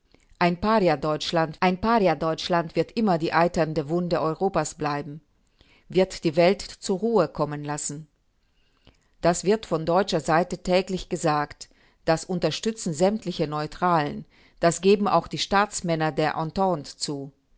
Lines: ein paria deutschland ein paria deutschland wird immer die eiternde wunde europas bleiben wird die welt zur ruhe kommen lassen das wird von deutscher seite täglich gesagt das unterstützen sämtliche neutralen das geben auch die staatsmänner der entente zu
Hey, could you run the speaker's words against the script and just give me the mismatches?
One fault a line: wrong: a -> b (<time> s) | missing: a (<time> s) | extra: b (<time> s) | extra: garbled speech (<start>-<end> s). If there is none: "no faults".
no faults